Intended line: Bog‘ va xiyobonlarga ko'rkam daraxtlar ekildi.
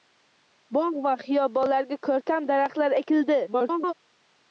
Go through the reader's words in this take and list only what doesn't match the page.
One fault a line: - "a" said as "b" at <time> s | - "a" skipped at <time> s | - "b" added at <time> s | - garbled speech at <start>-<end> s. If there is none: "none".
- garbled speech at 3.5-3.9 s